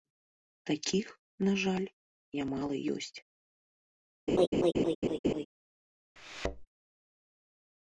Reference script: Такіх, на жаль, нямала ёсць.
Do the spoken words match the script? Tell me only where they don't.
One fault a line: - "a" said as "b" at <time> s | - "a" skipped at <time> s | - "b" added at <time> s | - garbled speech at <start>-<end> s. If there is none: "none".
none